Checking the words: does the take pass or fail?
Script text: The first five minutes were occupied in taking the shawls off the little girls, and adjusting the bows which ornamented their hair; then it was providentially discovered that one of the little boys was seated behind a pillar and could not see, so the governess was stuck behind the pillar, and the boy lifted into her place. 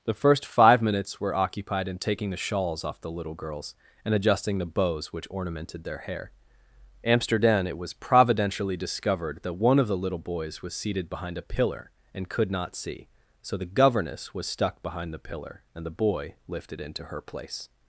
fail